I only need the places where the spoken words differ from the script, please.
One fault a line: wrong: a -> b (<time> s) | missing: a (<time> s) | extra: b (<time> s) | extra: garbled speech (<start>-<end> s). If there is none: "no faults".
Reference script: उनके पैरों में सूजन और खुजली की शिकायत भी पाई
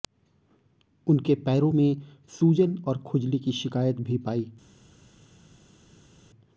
no faults